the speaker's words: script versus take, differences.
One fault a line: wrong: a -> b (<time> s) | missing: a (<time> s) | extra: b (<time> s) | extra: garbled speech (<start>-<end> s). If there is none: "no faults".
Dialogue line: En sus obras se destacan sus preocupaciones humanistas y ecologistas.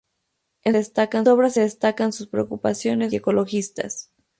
wrong: sus -> destacan (0.7 s)
missing: humanistas (3.1 s)